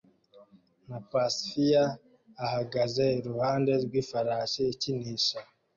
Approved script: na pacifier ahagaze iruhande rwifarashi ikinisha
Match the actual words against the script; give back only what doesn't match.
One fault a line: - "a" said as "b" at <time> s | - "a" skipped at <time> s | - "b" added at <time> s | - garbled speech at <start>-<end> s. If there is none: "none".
none